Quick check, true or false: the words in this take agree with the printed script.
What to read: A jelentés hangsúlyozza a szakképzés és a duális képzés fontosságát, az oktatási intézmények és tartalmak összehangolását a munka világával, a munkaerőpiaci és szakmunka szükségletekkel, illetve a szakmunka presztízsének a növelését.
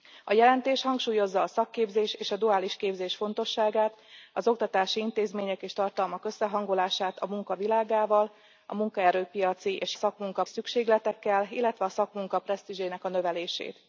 true